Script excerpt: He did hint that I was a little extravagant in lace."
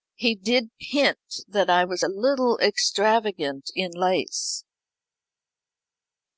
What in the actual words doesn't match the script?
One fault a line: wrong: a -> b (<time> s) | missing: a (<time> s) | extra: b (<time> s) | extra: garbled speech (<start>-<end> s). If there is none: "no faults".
no faults